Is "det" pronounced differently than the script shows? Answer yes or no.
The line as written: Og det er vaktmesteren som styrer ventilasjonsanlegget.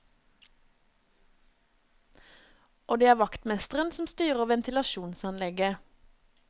no